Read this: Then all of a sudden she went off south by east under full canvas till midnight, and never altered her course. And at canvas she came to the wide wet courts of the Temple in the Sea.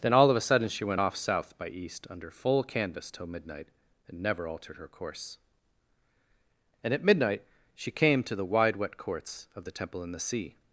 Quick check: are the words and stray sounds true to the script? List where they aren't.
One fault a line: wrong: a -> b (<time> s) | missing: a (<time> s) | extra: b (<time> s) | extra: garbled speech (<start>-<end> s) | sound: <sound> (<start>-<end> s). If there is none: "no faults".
wrong: canvas -> midnight (7.0 s)